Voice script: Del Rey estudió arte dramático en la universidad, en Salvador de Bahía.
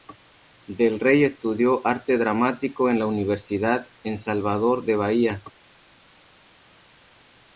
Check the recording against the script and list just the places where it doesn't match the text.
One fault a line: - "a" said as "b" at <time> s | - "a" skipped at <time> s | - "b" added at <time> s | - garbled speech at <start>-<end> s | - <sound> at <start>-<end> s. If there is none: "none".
none